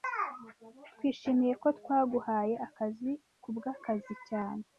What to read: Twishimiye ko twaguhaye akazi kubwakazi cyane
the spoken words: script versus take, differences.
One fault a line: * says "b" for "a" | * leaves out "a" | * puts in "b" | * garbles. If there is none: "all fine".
all fine